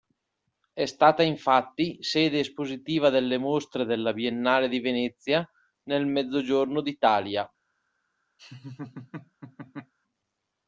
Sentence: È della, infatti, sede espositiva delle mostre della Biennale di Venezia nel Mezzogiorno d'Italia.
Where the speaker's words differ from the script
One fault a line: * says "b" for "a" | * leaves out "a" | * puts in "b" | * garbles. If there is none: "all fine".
* says "stata" for "della"